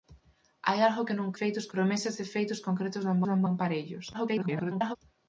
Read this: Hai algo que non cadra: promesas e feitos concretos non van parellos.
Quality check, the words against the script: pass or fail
fail